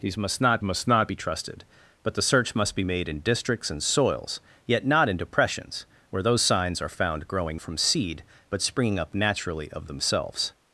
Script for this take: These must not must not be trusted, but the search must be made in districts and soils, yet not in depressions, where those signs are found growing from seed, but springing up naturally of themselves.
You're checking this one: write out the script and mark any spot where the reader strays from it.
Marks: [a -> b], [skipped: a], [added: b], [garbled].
These must not must not be trusted, but the search must be made in districts and soils, yet not in depressions, where those signs are found growing from seed, but springing up naturally of themselves.